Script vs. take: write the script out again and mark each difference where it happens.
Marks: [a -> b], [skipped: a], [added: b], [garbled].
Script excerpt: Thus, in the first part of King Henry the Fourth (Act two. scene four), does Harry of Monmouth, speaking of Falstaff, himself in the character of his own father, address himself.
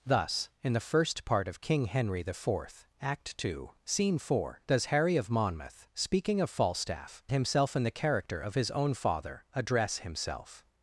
Thus, in the first part of King Henry the Fourth (Act two. scene four), does Harry of Monmouth, speaking of Falstaff, himself in the character of his own father, address himself.